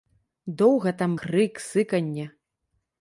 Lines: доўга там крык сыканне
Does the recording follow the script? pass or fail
pass